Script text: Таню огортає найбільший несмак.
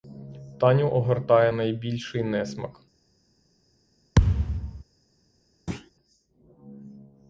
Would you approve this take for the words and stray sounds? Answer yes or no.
no